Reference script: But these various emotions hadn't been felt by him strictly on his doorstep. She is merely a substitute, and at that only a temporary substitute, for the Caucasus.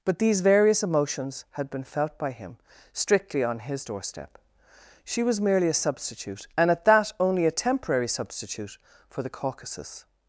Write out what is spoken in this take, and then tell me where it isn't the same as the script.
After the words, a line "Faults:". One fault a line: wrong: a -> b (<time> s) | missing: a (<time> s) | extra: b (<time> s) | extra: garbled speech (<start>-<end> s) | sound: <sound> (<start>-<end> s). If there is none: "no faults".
But these various emotions had been felt by him strictly on his doorstep. She was merely a substitute, and at that only a temporary substitute, for the Caucasus.
Faults:
wrong: hadn't -> had (1.5 s)
wrong: is -> was (5.2 s)